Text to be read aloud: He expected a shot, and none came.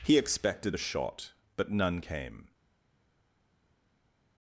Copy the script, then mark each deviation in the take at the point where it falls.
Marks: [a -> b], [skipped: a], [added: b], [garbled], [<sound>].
He expected a shot, [and -> but] none came.